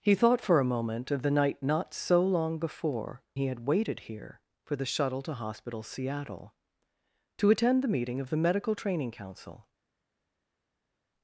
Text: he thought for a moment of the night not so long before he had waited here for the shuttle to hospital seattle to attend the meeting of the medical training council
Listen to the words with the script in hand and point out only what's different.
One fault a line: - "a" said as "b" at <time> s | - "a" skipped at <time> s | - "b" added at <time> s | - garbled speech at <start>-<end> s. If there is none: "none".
none